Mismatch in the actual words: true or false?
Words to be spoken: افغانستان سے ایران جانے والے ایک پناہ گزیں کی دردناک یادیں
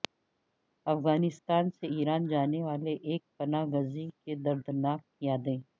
false